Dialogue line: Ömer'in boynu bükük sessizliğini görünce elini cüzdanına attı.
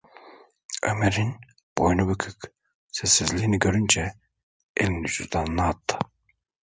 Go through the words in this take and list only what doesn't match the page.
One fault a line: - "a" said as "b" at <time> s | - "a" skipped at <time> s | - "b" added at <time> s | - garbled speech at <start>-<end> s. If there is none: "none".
none